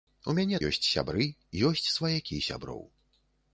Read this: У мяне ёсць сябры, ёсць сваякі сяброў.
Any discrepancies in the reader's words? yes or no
no